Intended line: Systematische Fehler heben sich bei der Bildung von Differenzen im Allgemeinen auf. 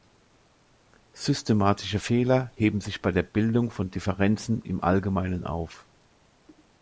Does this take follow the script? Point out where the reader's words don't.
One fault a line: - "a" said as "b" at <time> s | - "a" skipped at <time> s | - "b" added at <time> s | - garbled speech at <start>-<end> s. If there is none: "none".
none